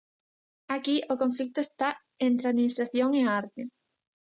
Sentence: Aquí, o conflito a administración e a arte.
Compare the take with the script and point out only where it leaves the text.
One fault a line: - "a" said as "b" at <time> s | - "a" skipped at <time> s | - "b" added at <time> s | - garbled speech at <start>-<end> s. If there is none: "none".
- "está entre" added at 1.6 s